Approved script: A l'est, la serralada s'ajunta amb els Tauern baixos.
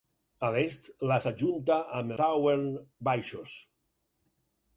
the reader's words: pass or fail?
fail